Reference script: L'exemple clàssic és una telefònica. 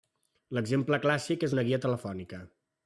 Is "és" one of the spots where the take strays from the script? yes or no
no